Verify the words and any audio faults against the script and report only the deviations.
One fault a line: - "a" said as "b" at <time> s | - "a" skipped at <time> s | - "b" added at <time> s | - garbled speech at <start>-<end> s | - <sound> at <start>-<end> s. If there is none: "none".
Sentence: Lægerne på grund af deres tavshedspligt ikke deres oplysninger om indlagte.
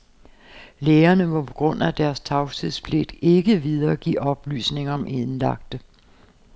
- "må" added at 1.3 s
- "deres" said as "videregive" at 3.6 s